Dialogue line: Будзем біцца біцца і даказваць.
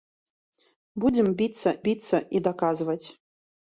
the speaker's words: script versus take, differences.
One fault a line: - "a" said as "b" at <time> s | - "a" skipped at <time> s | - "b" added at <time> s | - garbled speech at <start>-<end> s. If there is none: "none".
none